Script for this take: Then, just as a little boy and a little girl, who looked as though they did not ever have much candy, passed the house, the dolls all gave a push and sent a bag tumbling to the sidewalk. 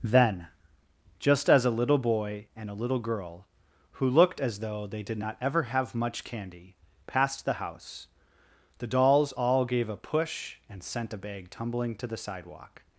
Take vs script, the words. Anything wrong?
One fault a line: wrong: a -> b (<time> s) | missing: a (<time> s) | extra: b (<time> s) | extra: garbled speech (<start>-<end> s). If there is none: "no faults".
no faults